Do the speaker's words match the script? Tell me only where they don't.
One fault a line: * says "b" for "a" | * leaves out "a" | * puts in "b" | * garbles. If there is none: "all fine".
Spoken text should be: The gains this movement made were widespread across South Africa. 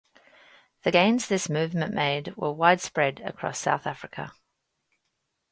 all fine